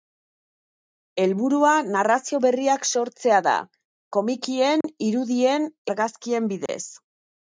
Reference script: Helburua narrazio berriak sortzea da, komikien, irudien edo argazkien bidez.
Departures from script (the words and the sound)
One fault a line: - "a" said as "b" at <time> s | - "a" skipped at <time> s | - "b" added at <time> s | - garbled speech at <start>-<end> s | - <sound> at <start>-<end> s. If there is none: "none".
- dropout at 4.8-4.8 s
- "edo" skipped at 5.7 s
- dropout at 6.7-6.7 s